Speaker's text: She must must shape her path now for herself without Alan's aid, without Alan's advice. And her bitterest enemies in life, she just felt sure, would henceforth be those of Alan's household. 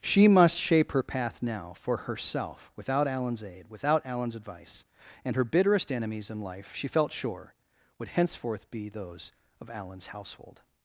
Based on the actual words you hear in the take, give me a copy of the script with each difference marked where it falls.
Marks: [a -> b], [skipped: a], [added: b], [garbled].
She must [skipped: must] shape her path now for herself without Alan's aid, without Alan's advice. And her bitterest enemies in life, she [skipped: just] felt sure, would henceforth be those of Alan's household.